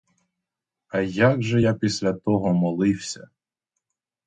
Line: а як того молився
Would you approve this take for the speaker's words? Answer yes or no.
no